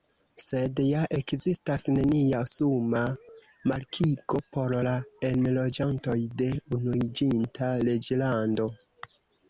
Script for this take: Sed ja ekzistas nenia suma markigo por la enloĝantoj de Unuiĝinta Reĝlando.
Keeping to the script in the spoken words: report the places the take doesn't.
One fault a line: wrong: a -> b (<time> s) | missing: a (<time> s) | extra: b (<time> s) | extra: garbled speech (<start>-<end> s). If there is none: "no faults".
no faults